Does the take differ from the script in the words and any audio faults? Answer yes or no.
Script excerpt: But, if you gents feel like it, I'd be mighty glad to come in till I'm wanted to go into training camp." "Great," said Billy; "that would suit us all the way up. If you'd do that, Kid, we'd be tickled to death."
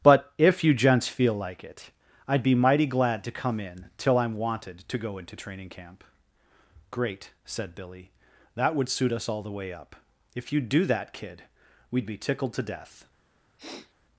yes